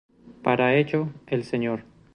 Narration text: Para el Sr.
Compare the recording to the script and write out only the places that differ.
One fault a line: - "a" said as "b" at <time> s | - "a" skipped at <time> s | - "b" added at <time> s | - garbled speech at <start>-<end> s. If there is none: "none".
- "ello" added at 0.7 s